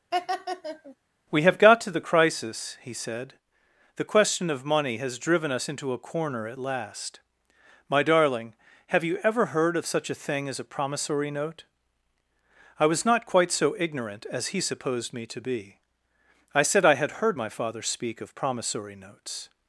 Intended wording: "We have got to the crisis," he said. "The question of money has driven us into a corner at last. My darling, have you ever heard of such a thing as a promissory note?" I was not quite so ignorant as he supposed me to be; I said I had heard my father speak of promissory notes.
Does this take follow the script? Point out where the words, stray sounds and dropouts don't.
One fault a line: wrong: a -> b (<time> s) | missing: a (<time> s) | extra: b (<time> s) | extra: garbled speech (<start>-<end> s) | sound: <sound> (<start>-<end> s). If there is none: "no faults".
sound: laugh (0.1-1.0 s)